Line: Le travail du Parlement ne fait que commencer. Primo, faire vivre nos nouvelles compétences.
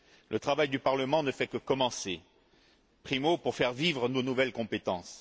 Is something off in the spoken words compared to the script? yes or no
yes